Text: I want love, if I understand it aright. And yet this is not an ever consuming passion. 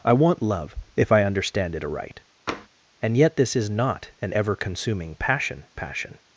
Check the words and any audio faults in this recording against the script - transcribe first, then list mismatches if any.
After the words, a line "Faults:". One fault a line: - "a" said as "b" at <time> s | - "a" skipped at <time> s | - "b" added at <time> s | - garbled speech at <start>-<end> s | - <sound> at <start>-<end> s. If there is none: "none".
I want love, if I understand it aright. And yet this is not an ever consuming passion passion.
Faults:
- tap at 2.5-2.7 s
- "passion" added at 5.7 s